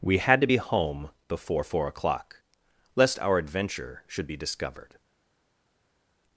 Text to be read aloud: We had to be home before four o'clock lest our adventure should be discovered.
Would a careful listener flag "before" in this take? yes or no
no